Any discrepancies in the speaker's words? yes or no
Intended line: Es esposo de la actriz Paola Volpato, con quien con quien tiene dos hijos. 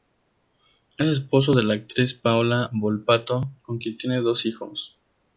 yes